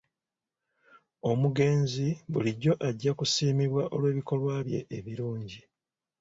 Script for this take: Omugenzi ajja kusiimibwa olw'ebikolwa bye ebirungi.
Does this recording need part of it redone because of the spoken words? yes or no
yes